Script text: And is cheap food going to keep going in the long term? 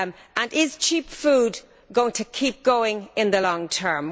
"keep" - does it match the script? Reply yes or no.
yes